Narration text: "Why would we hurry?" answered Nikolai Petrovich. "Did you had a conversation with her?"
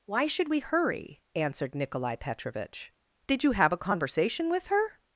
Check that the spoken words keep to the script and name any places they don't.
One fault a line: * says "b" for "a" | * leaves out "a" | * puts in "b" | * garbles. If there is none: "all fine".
* says "should" for "would"
* says "have" for "had"